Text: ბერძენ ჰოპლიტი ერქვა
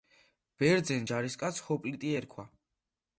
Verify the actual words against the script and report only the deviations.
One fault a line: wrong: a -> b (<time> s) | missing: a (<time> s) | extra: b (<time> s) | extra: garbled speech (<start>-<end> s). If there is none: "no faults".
extra: ჯარისკაცს (1.1 s)